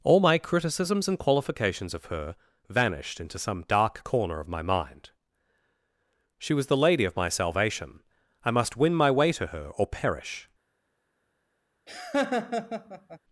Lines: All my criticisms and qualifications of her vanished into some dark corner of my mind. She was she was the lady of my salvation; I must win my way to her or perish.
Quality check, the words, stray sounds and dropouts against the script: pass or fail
fail